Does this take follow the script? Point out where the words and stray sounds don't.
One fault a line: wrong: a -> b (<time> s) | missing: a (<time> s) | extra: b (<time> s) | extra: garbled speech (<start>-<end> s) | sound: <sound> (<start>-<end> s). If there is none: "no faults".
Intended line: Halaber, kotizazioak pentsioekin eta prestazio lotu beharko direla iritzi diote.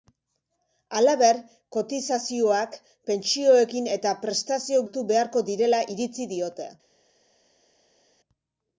no faults